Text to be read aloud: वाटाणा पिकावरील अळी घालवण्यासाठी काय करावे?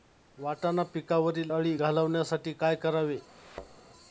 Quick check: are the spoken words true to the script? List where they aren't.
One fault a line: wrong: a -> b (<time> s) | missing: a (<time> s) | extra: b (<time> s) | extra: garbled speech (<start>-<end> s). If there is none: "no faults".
no faults